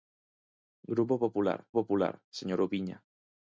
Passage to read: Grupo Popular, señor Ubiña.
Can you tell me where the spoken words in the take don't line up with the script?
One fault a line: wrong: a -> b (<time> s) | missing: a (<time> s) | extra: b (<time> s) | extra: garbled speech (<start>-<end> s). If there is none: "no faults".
extra: Popular (1.7 s)